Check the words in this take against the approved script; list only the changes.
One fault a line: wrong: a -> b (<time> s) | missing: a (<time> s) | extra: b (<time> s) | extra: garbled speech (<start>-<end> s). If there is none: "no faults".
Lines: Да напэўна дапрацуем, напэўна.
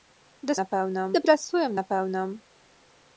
no faults